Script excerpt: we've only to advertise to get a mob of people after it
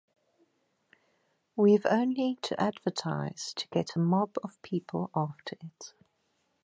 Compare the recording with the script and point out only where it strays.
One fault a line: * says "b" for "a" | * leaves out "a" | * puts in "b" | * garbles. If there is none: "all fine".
all fine